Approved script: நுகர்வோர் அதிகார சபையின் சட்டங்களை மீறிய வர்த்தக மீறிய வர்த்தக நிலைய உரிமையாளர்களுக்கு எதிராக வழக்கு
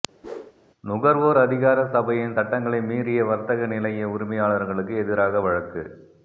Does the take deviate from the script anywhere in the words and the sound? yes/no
yes